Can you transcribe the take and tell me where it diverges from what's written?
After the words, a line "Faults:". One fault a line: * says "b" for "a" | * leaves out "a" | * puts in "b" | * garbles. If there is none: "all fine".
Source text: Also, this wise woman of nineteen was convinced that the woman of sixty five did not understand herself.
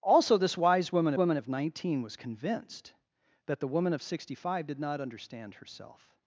Also, this wise woman woman of nineteen was convinced that the woman of sixty five did not understand herself.
Faults:
* puts in "woman"